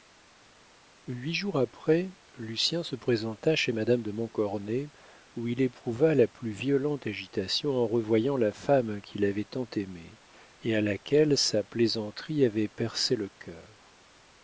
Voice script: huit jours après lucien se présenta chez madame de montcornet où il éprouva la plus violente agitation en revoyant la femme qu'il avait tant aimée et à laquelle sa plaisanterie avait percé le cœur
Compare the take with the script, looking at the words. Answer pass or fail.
pass